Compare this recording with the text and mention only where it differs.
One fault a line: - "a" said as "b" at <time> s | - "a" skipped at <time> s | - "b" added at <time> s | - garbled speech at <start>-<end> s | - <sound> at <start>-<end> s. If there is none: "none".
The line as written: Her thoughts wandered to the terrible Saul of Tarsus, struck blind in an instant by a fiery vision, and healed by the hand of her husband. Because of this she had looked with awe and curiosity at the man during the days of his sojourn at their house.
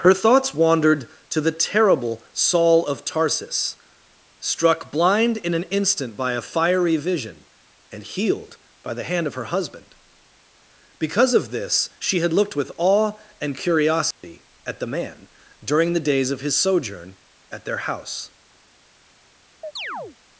- dropout at 14.1-14.2 s
- chirp at 19.6-20.2 s